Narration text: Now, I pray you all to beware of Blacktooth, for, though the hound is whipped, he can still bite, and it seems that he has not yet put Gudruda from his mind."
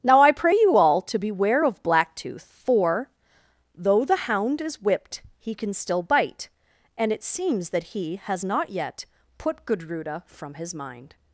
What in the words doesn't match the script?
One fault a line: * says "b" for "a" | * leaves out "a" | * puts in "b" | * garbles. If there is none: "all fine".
all fine